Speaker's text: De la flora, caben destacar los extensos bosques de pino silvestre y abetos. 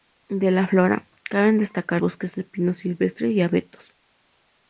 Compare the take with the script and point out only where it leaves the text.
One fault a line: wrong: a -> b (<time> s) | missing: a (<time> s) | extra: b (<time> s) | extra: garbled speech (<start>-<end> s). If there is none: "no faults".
missing: los extensos (2.0 s)